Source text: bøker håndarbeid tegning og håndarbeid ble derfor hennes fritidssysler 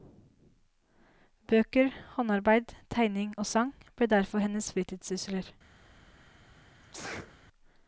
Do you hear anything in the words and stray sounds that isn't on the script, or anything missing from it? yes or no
yes